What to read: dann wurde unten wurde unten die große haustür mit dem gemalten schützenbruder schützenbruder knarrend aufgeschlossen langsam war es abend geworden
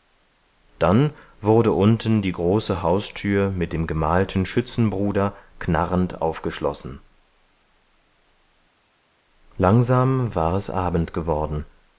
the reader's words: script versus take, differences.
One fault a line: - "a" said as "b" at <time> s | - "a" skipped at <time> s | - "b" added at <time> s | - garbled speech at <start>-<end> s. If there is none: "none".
- "wurde unten" skipped at 2.2 s
- "schützenbruder" skipped at 5.3 s